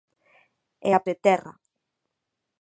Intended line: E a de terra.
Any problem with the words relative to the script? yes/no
no